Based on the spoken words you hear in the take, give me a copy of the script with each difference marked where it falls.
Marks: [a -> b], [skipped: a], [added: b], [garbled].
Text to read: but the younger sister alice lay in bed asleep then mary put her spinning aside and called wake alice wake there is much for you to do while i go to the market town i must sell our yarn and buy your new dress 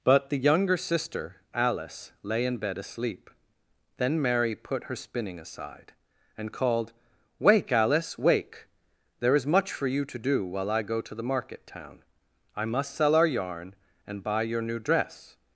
but the younger sister alice lay in bed asleep then mary put her spinning aside and called wake alice wake there is much for you to do while i go to the market town i must sell our yarn and buy your new dress